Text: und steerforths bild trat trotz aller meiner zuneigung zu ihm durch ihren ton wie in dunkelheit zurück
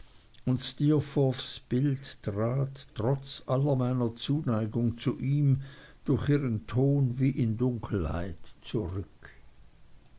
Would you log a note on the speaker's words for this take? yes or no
no